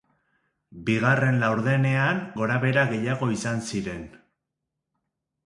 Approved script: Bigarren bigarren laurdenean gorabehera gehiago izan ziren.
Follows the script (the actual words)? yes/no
no